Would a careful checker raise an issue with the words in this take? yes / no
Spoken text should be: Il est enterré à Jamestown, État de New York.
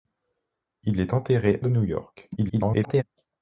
yes